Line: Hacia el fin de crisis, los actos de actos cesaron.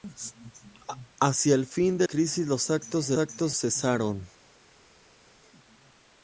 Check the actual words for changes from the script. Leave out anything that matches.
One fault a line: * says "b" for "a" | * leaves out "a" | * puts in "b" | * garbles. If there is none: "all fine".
all fine